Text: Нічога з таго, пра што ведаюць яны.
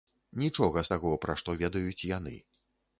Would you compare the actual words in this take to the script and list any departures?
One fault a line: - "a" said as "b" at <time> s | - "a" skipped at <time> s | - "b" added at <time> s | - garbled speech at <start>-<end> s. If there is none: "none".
none